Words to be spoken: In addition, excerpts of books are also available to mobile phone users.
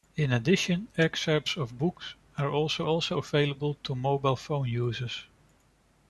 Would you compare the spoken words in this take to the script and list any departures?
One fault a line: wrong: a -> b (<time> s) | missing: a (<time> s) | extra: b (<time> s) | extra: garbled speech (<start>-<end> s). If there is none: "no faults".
extra: also (2.8 s)